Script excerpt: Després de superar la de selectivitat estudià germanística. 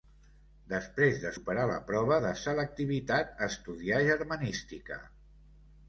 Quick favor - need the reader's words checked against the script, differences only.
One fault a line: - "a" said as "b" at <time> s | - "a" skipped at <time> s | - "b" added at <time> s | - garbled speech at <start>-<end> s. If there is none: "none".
- "prova" added at 1.9 s